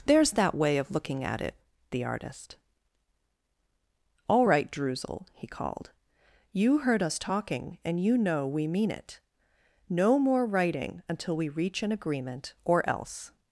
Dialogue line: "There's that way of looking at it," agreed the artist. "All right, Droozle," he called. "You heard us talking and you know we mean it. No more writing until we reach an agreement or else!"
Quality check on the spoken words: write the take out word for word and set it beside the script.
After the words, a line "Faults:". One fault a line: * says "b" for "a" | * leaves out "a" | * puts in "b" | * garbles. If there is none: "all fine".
"There's that way of looking at it," the artist. "All right, Droozle," he called. "You heard us talking and you know we mean it. No more writing until we reach an agreement or else!"
Faults:
* leaves out "agreed"